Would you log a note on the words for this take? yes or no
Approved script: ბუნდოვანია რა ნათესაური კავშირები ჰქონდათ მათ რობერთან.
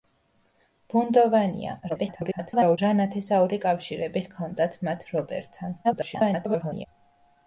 yes